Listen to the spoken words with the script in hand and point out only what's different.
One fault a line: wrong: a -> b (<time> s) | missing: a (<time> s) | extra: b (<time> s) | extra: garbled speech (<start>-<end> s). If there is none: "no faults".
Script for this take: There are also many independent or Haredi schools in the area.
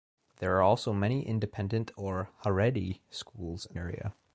missing: the (3.8 s)